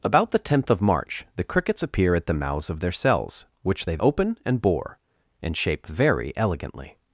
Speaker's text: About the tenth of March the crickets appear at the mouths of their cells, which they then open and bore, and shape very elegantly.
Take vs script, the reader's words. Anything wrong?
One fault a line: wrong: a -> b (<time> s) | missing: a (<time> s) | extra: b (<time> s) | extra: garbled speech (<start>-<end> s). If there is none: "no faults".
missing: then (4.0 s)